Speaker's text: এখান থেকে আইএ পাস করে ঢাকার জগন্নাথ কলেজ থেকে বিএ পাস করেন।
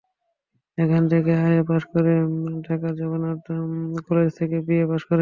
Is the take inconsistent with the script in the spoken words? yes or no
no